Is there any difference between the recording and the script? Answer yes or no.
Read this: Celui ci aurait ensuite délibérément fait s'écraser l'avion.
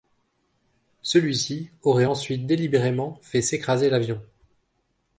no